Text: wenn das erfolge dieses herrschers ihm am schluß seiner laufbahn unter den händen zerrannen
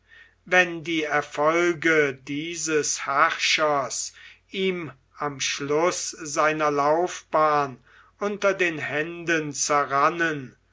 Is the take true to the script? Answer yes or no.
no